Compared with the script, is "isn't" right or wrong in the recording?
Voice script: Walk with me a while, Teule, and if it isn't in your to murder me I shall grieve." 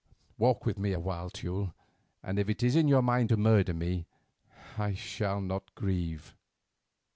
wrong